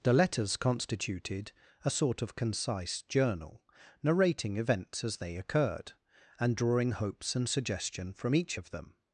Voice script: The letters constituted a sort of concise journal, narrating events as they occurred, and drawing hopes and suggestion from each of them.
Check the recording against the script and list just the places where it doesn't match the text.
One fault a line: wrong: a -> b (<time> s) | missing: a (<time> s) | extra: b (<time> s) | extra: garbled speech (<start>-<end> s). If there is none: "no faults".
no faults